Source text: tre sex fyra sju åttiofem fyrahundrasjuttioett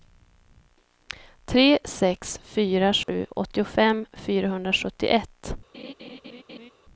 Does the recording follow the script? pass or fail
pass